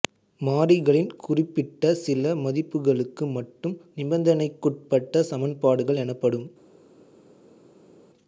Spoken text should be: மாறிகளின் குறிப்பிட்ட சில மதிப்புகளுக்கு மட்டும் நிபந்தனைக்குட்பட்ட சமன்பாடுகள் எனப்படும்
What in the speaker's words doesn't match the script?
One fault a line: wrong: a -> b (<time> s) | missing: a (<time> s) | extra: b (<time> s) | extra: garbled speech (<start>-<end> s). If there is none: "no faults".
no faults